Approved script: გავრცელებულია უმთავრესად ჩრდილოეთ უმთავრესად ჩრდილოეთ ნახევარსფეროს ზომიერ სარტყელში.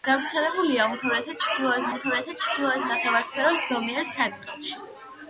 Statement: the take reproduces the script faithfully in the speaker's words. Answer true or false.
true